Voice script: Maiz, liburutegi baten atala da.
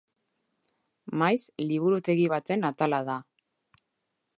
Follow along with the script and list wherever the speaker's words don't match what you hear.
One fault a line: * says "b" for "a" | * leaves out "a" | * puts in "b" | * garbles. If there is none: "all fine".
all fine